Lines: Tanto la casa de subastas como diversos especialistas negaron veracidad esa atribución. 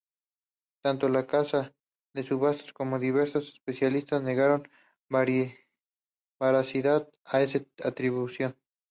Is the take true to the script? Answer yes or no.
no